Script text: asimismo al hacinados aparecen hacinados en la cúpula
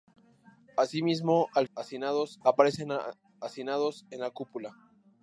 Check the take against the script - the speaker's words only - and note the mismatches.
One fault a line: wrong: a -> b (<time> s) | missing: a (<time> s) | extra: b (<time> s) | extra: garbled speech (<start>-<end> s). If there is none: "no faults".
no faults